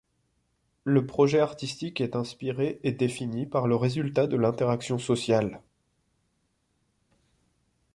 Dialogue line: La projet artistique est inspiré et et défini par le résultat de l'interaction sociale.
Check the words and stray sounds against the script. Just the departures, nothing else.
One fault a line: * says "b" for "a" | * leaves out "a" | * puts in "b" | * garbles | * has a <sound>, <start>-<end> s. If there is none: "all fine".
* says "Le" for "La"
* leaves out "et"